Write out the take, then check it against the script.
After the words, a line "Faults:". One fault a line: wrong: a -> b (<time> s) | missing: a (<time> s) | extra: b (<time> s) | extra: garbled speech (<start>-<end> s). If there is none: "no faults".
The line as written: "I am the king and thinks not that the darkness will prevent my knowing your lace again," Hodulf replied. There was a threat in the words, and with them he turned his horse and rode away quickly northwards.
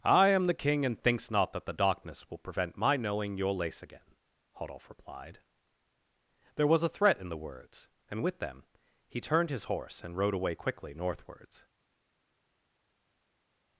"I am the king and thinks not that the darkness will prevent my knowing your lace again," Hodulf replied. There was a threat in the words, and with them he turned his horse and rode away quickly northwards.
Faults:
no faults